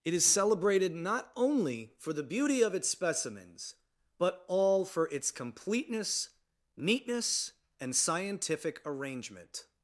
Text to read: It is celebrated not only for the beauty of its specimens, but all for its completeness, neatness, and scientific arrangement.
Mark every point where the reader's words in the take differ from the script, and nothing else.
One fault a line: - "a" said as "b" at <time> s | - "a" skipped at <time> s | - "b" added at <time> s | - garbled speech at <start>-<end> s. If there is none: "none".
none